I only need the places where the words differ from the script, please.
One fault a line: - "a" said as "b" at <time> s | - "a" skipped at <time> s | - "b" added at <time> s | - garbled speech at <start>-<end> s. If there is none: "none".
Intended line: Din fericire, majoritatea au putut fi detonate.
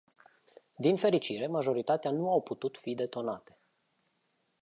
- "nu" added at 2.1 s